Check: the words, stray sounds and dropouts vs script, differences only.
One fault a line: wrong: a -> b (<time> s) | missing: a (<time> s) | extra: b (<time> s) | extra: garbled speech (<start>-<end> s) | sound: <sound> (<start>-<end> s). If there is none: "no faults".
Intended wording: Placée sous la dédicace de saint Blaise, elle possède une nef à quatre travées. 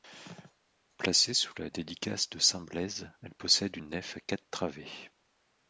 no faults